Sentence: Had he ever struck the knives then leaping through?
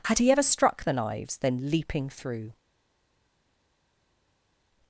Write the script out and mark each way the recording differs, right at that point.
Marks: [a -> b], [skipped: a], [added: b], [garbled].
Had he ever struck the knives then leaping through?